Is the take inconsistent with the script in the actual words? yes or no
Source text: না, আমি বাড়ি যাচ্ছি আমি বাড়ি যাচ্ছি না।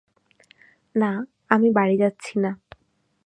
yes